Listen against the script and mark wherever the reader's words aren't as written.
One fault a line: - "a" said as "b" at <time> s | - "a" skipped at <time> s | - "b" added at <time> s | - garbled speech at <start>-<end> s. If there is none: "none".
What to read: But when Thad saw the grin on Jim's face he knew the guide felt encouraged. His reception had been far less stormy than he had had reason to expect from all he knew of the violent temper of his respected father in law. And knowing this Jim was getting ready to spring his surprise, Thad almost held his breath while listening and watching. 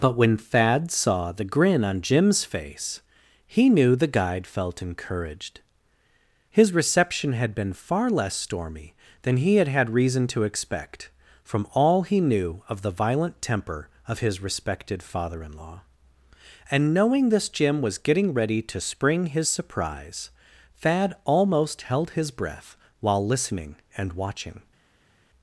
none